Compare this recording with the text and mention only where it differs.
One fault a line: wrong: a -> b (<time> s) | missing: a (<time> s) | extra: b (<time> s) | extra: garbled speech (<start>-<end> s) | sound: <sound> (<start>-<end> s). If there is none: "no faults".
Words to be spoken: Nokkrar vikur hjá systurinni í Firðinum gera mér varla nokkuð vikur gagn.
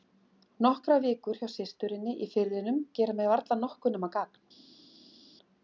wrong: vikur -> nema (4.0 s)